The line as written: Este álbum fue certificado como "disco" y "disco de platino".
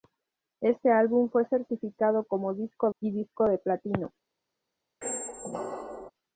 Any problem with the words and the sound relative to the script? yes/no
yes